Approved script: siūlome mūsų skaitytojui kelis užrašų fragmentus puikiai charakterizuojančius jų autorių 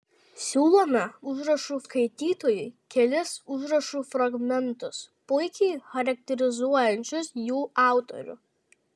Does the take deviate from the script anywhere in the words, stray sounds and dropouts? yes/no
yes